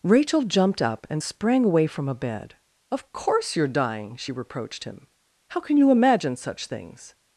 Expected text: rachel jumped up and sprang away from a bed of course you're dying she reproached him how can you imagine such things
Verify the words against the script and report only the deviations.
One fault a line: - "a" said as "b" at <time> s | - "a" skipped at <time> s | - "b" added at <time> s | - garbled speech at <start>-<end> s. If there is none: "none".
none